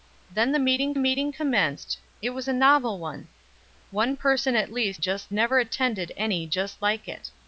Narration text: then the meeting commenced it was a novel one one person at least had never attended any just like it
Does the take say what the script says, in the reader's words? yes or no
no